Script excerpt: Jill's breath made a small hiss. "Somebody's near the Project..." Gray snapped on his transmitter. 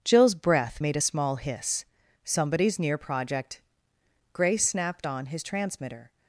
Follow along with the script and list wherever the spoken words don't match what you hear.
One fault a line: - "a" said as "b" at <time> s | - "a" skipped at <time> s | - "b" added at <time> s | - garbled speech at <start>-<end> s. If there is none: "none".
- "the" skipped at 3.0 s